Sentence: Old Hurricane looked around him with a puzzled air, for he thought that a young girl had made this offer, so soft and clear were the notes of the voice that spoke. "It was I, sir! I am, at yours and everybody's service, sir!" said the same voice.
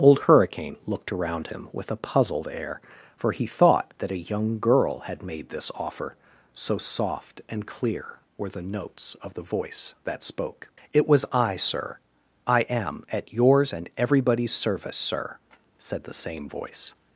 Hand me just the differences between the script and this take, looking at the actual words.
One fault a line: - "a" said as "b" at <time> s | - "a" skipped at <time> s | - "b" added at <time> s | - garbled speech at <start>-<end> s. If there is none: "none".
none